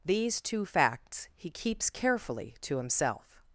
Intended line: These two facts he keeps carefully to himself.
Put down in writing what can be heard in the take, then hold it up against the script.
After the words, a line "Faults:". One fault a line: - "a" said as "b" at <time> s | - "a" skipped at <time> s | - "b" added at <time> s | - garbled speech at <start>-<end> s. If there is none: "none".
These two facts he keeps carefully to himself.
Faults:
none